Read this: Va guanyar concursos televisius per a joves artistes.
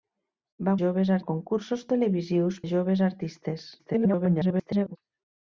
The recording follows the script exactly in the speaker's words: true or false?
false